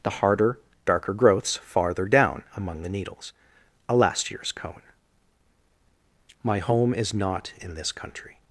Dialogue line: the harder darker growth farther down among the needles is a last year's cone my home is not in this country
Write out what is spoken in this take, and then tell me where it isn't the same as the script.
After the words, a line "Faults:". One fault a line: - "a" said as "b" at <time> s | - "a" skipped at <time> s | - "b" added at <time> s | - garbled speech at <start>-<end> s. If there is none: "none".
the harder darker growths farther down among the needles a last year's cone my home is not in this country
Faults:
- "growth" said as "growths" at 1.1 s
- "is" skipped at 3.3 s